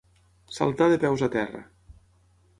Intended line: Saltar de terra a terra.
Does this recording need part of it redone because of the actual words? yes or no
yes